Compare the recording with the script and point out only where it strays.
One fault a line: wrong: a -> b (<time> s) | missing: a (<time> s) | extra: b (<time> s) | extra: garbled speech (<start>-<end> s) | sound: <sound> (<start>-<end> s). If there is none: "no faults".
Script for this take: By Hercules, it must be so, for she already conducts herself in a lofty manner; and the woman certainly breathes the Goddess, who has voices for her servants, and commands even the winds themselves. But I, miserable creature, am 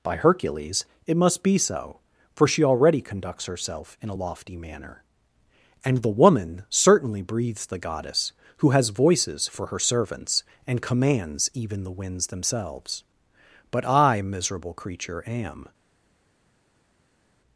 no faults